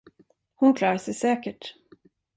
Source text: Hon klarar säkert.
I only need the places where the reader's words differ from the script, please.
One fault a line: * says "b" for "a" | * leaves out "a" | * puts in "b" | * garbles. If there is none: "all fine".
* puts in "sig"